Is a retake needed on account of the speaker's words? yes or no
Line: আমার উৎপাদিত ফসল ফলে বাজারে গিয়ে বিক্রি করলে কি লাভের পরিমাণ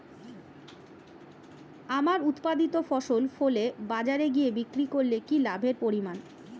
no